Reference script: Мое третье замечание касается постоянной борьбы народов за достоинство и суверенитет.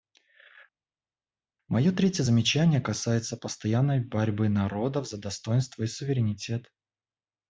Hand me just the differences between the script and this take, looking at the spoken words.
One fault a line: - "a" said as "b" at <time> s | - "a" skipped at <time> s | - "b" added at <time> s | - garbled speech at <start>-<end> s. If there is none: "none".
none